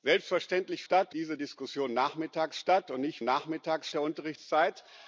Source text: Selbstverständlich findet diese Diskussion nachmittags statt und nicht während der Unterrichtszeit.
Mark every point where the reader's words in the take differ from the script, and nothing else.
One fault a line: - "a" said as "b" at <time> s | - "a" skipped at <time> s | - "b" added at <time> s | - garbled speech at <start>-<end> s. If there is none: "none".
- "findet" said as "statt" at 0.8 s
- "während" said as "nachmittags" at 3.2 s